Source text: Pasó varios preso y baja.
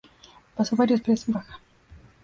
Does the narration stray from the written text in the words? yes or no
no